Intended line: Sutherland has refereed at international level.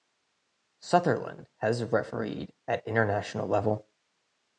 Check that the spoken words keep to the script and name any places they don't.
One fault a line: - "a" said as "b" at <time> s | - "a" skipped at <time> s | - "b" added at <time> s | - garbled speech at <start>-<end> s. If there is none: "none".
none